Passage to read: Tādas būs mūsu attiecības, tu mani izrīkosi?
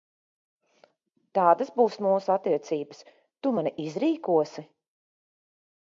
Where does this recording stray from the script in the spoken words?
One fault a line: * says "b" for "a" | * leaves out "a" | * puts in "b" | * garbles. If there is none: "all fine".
all fine